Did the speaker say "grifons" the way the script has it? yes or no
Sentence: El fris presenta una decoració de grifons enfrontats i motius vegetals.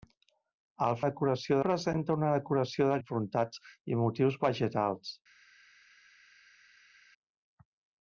no